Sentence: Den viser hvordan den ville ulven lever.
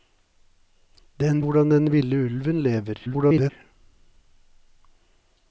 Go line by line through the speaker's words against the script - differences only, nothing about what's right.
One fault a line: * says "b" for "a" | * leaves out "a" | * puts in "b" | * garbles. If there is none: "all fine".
* leaves out "viser"
* garbles